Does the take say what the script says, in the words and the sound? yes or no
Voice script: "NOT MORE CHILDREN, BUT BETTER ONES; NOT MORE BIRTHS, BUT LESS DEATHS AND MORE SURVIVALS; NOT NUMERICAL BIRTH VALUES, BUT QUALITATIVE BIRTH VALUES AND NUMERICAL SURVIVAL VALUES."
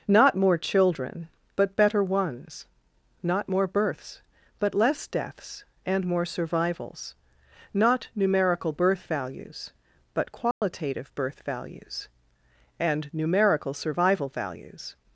no